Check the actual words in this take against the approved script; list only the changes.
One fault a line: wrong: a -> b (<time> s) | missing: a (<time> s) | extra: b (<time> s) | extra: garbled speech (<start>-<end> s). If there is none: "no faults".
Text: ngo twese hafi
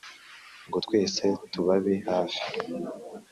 extra: tubabe (1.5 s)